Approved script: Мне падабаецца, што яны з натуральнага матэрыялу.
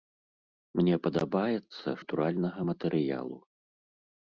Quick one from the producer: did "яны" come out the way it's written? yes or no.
no